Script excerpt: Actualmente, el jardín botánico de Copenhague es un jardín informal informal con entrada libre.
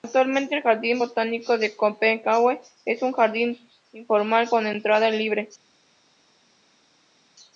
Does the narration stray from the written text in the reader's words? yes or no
yes